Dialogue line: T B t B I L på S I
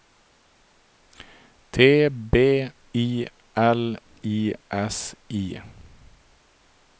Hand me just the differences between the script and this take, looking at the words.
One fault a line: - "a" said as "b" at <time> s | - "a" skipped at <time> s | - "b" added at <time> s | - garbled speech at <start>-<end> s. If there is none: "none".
- "t B" skipped at 2.3 s
- "på" said as "I" at 4.2 s